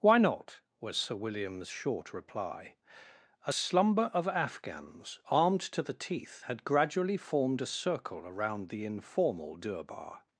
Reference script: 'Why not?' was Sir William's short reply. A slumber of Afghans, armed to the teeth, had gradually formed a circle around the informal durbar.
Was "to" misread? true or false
false